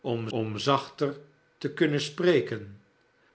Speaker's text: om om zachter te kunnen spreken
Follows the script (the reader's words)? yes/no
yes